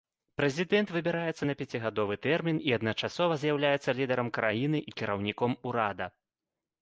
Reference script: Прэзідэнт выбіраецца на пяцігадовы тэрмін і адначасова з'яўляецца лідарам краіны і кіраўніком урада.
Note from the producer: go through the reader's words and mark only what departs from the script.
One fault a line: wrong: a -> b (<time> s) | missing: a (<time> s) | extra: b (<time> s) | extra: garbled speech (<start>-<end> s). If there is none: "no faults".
no faults